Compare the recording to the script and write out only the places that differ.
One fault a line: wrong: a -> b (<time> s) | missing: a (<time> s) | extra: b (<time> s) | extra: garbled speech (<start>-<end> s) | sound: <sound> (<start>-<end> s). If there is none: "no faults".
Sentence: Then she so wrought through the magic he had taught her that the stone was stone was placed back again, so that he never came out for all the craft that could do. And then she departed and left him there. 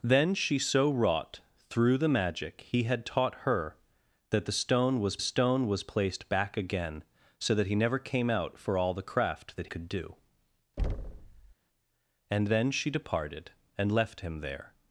sound: thud (10.8-11.5 s)